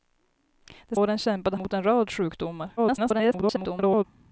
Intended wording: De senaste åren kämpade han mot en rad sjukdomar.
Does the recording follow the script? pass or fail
fail